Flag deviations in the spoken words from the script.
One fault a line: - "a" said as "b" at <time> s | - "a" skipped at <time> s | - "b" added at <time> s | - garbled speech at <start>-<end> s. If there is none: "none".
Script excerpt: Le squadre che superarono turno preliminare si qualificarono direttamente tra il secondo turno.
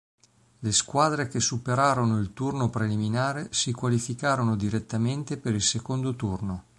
- "il" added at 2.2 s
- "tra" said as "per" at 5.4 s